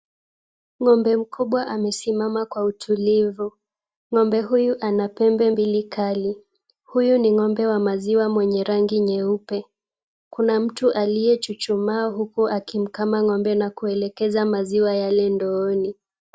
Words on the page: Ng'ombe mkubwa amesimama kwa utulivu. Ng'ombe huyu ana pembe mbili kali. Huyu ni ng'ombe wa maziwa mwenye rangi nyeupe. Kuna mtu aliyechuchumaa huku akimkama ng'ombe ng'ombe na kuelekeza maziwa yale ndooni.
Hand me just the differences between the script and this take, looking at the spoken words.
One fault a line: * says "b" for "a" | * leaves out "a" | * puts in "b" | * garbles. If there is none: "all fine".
* leaves out "ng'ombe"